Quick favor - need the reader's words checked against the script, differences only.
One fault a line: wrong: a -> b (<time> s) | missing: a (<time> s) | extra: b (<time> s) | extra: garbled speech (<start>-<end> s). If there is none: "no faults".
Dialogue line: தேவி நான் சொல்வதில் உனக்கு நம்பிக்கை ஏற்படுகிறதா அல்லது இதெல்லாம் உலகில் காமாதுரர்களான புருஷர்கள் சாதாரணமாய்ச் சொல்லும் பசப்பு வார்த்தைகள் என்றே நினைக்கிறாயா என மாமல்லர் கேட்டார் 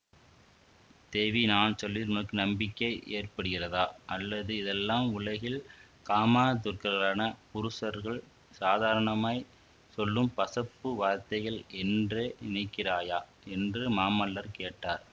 wrong: என -> என்று (13.5 s)